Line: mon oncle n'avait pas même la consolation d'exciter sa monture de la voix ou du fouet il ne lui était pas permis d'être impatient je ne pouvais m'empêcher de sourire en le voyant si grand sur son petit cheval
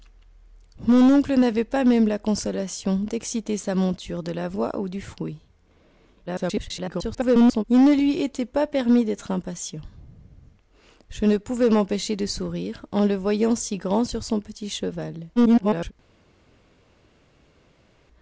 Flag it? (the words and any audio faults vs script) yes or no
yes